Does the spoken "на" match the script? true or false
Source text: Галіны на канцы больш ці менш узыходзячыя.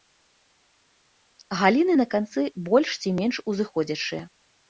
true